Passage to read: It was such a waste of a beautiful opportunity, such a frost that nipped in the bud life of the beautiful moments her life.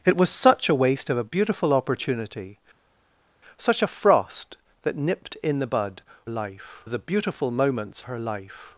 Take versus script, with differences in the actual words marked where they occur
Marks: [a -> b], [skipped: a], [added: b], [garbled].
It was such a waste of a beautiful opportunity, such a frost that nipped in the bud life of the beautiful moments her life.